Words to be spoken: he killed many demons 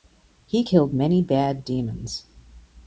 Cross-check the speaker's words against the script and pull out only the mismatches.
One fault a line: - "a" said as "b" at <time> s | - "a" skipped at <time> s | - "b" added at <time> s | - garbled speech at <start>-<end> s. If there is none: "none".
- "bad" added at 1.2 s